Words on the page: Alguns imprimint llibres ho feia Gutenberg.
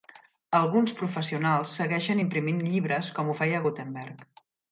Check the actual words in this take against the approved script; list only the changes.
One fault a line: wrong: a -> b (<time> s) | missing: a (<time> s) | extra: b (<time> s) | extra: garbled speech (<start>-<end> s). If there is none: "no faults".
extra: professionals segueixen (1.0 s)
extra: com (3.2 s)